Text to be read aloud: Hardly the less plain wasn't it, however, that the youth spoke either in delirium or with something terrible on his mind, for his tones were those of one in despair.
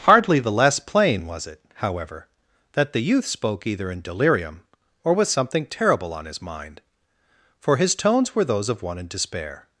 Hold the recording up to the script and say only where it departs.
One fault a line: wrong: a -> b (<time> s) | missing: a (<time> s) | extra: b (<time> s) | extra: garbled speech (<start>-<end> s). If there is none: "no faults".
wrong: wasn't -> was (1.3 s)